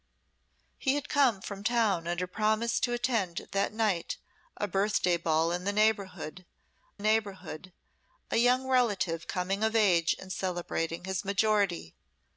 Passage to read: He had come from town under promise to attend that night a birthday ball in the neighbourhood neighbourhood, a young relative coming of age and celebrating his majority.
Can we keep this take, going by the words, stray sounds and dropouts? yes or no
yes